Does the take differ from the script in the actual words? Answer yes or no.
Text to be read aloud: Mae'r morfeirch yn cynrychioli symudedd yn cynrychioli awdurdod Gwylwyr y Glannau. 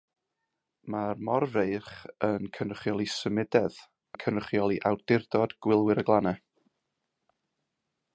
no